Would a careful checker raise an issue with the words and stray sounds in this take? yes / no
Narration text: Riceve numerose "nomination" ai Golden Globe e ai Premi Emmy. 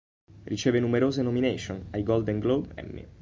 yes